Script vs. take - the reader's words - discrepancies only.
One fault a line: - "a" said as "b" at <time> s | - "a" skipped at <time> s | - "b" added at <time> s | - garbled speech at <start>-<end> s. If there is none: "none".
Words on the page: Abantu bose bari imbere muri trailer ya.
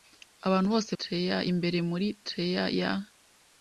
- "bari" said as "trailer" at 1.0 s